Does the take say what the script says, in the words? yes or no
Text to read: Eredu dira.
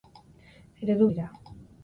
yes